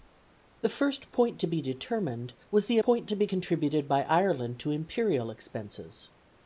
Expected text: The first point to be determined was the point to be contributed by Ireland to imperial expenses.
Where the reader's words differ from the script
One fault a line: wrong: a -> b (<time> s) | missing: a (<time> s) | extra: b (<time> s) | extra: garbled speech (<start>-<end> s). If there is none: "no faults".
no faults